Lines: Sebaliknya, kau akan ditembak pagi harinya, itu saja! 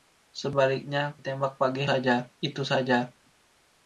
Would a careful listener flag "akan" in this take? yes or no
yes